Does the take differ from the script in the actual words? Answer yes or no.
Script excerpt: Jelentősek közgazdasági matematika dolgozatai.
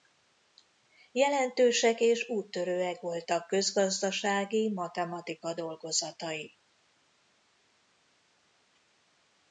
yes